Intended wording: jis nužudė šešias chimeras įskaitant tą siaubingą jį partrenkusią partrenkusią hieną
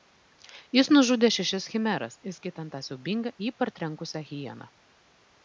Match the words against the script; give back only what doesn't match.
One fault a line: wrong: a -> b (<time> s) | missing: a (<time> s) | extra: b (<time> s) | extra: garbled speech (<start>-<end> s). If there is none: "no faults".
missing: partrenkusią (4.2 s)